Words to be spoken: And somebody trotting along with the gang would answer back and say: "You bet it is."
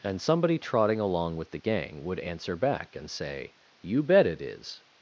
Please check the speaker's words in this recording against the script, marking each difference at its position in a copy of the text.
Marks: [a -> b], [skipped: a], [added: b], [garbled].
And somebody trotting along with the gang would answer back and say: "You bet it is."